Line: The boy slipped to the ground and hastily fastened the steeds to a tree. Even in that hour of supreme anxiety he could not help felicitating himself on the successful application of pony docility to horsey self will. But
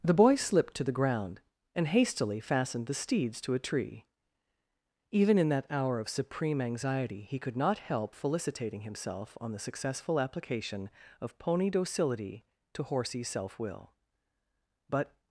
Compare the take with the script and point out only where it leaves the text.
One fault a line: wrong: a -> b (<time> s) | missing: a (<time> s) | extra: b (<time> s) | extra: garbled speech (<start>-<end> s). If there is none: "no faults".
no faults